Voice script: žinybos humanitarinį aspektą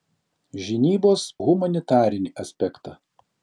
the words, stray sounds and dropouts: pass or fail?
pass